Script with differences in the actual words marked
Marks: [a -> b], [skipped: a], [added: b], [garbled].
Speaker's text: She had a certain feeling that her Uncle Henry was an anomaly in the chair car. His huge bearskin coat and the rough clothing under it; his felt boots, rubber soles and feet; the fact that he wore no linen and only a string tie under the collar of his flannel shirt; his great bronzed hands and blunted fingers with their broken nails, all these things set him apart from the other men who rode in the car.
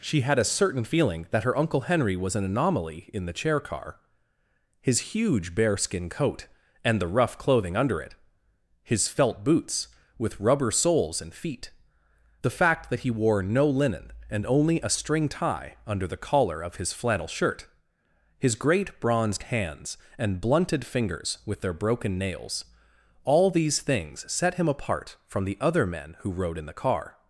She had a certain feeling that her Uncle Henry was an anomaly in the chair car. His huge bearskin coat and the rough clothing under it; his felt boots, [added: with] rubber soles and feet; the fact that he wore no linen and only a string tie under the collar of his flannel shirt; his great bronzed hands and blunted fingers with their broken nails, all these things set him apart from the other men who rode in the car.